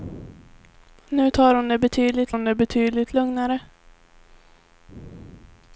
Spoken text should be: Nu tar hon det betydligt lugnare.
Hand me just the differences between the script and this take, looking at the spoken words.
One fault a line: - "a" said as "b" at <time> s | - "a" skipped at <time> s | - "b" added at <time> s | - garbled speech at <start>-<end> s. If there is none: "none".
- "hon det betydligt" added at 2.3 s